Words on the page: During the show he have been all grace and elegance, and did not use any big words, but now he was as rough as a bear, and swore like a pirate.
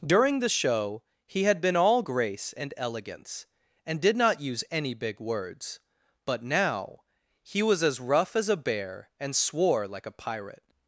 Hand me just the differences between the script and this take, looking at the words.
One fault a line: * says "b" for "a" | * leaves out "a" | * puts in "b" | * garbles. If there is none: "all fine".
* says "had" for "have"